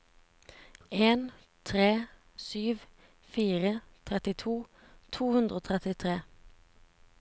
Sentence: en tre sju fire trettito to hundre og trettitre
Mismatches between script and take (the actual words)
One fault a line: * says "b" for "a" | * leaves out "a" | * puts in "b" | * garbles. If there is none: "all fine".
all fine